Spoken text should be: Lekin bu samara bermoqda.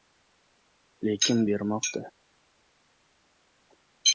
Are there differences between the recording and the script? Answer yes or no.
yes